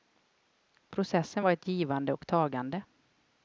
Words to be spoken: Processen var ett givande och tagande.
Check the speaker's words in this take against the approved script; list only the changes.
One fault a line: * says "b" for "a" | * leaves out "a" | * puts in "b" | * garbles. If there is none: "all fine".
all fine